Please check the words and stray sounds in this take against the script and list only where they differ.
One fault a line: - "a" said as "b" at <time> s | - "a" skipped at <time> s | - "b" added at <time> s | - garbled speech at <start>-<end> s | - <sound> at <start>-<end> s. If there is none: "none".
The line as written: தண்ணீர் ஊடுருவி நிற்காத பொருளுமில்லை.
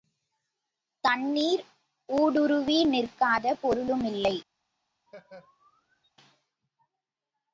- laugh at 5.1-6.1 s